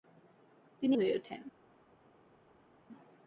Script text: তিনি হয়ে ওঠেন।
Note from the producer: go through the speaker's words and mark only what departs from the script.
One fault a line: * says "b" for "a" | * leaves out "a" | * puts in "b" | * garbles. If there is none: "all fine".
all fine